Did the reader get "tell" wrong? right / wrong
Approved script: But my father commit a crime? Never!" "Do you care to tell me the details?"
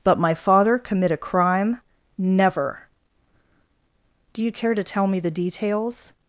right